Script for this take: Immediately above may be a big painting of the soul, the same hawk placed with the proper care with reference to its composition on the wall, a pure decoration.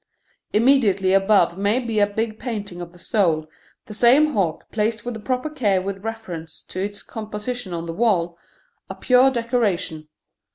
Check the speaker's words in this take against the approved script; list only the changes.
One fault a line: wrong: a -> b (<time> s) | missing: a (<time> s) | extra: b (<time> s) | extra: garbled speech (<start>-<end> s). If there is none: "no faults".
no faults